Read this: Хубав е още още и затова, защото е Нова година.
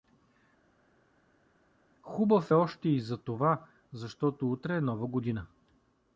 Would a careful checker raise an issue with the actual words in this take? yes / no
yes